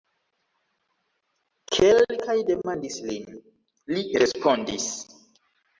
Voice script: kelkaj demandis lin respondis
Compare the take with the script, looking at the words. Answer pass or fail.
fail